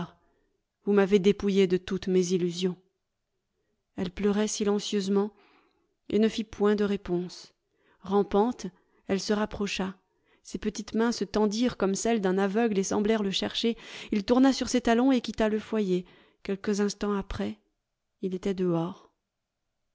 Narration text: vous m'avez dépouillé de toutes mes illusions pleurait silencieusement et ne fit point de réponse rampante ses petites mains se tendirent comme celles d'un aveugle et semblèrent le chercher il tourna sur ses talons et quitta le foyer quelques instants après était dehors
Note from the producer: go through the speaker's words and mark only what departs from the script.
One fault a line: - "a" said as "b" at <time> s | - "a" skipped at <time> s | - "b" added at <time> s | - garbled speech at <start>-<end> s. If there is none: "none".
- "elle" added at 4.0 s
- "elle se rapprocha" added at 9.1 s
- "il" added at 18.2 s